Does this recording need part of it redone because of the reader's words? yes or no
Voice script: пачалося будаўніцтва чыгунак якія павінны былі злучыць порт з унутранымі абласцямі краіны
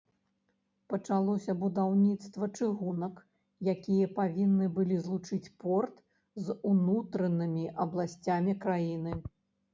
no